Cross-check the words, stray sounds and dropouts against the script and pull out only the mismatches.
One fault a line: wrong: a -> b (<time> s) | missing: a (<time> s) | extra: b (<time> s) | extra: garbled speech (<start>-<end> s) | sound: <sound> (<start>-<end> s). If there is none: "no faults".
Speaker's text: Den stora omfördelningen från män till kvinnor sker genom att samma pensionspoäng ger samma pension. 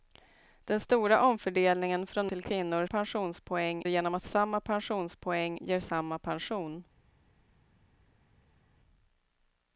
missing: män (2.3 s)
wrong: sker -> pensionspoäng (2.8 s)